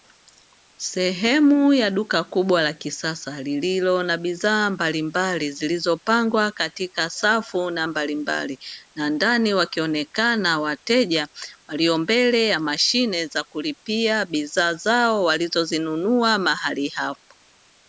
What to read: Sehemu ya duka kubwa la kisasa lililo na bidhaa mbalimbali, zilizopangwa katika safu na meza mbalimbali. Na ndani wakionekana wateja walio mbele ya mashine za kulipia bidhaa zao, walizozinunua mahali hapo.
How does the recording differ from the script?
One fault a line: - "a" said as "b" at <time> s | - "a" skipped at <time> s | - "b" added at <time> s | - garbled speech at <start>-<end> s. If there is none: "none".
- "meza" skipped at 7.9 s